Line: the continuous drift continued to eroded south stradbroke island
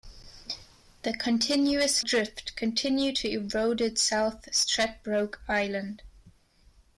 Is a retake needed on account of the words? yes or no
no